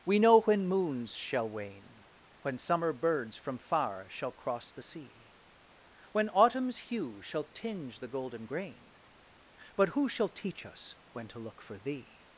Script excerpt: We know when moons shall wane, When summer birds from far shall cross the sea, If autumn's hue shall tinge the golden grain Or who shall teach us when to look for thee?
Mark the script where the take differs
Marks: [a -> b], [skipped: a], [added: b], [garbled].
We know when moons shall wane, When summer birds from far shall cross the sea, [If -> When] autumn's hue shall tinge the golden grain [Or -> But] who shall teach us when to look for thee?